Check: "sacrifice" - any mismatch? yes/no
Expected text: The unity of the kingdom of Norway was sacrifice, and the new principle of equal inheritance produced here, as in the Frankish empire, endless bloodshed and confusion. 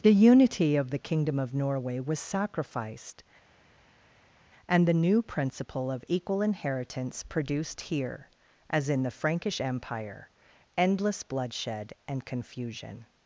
yes